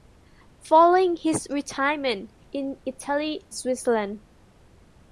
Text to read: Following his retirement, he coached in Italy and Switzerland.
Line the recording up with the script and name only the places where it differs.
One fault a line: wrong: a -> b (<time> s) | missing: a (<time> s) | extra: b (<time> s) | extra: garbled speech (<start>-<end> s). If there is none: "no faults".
missing: he coached (2.3 s)
missing: and (3.5 s)